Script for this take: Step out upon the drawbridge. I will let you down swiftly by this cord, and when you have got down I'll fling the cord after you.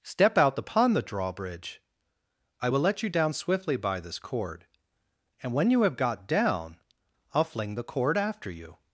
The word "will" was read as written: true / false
true